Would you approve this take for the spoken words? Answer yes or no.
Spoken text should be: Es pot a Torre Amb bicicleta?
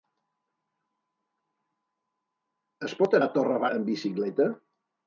yes